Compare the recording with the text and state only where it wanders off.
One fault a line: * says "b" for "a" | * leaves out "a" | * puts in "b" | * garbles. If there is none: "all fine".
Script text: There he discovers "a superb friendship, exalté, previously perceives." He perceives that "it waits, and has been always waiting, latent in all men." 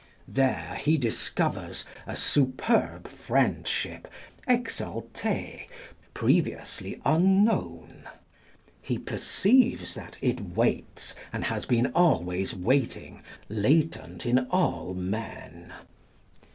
* says "unknown" for "perceives"